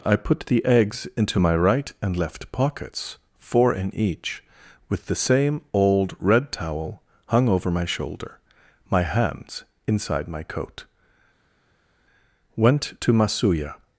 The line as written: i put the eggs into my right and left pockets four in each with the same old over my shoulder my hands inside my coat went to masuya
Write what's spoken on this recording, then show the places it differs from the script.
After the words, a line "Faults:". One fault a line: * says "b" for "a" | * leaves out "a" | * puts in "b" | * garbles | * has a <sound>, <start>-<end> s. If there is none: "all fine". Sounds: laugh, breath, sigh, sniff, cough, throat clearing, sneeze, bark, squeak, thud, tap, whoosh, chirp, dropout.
i put the eggs into my right and left pockets four in each with the same old red towel hung over my shoulder my hands inside my coat went to masuya
Faults:
* puts in "red towel hung"